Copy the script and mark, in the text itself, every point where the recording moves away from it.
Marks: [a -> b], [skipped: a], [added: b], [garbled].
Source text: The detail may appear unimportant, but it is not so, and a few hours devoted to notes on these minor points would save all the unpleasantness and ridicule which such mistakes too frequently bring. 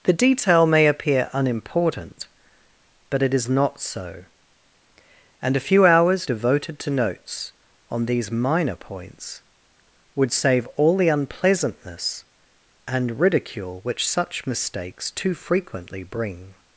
The detail may appear unimportant, but it is not so, and a few hours devoted to notes on these minor points would save all the unpleasantness and ridicule which such mistakes too frequently bring.